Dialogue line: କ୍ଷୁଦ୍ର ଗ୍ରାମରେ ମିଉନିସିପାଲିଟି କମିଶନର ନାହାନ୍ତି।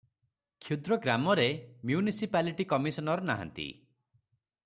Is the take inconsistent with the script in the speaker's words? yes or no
no